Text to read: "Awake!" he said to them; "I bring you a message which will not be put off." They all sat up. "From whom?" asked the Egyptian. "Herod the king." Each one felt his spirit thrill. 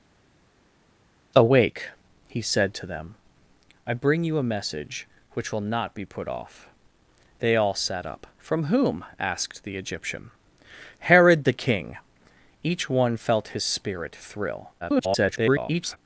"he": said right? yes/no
yes